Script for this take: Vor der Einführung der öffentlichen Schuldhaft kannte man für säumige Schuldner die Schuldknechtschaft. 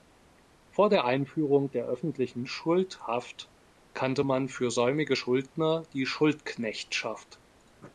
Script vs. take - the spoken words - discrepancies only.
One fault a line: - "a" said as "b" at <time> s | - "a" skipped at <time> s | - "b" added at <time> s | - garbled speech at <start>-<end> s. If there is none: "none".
none